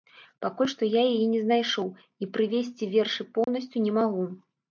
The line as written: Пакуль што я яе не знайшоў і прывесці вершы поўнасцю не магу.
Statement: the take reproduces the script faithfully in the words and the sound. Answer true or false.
false